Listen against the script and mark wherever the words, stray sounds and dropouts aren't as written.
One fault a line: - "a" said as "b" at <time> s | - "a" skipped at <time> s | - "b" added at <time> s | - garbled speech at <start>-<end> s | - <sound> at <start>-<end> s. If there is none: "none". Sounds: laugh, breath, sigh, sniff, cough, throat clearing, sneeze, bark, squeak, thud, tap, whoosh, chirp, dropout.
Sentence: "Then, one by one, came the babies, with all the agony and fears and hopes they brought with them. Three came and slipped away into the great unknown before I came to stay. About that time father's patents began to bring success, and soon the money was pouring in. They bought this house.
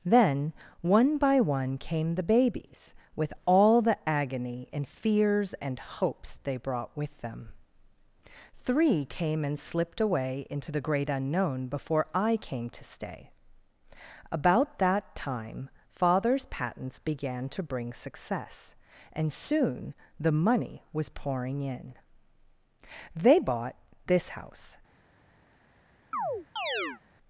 - chirp at 26.1-27.0 s